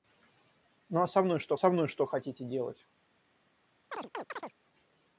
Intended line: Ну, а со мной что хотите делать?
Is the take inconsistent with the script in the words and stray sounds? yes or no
yes